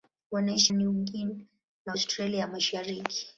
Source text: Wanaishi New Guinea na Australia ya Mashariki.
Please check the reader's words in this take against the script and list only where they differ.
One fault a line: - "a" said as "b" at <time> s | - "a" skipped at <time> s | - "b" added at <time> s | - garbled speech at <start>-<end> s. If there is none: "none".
none